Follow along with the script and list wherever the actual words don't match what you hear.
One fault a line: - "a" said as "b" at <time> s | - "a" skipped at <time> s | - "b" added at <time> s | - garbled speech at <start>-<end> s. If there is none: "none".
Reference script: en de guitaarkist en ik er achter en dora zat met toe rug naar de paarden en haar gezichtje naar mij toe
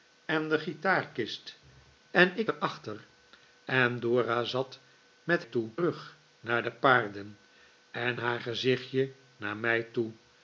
none